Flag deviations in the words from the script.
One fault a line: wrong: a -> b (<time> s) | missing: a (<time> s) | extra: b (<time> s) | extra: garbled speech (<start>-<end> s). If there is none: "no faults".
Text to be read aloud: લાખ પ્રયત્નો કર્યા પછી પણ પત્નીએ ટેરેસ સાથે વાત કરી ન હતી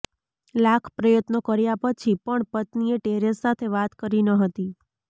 no faults